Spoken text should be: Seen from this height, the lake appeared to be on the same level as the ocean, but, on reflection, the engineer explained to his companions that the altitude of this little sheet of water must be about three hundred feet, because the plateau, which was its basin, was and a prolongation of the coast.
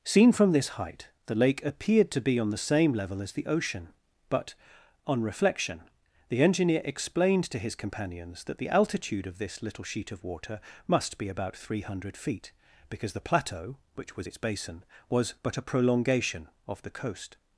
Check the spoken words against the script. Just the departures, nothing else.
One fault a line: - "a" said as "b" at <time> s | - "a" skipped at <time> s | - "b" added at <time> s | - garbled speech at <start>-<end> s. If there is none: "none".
- "and" said as "but" at 15.4 s